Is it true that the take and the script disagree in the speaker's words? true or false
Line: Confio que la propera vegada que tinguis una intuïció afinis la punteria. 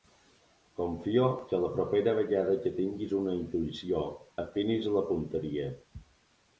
false